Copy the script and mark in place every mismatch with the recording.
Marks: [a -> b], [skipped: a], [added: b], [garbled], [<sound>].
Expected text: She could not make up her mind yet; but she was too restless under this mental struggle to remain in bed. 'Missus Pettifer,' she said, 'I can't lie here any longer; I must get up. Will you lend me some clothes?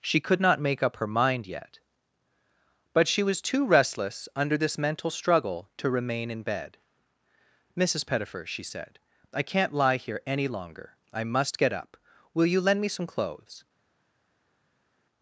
She could not make up her mind yet; but she was too restless under this mental struggle to remain in bed. 'Missus Pettifer,' she said, 'I can't lie here any longer; I must get up. Will you lend me some clothes?